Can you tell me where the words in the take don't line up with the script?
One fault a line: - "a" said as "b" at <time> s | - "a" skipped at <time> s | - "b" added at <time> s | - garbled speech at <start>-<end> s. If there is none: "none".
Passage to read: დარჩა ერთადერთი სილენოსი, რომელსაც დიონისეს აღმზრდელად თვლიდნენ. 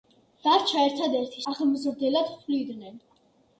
- "სილენოსი რომელსაც დიონისეს" skipped at 1.4 s